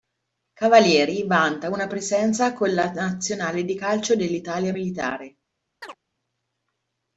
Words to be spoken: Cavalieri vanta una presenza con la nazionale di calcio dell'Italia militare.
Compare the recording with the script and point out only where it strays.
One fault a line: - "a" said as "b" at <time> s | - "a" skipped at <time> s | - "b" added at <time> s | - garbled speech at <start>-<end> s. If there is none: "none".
none